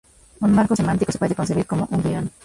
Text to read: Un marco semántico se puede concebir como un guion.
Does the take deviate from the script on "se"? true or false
false